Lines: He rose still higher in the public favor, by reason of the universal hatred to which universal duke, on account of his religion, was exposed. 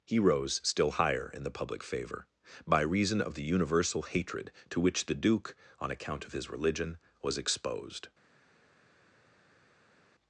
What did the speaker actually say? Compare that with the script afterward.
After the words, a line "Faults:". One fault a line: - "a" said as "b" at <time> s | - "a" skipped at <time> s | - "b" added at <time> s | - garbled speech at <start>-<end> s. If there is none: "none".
He rose still higher in the public favor, by reason of the universal hatred to which the duke, on account of his religion, was exposed.
Faults:
- "universal" said as "the" at 5.0 s